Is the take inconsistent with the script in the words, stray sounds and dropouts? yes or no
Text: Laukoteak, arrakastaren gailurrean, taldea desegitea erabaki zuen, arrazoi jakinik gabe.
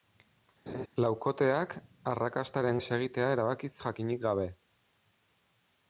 yes